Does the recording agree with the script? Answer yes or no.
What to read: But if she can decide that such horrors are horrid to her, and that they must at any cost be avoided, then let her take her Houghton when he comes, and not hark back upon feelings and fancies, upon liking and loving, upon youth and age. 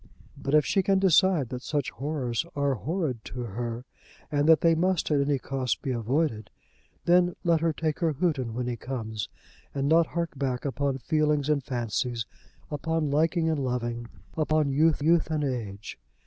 no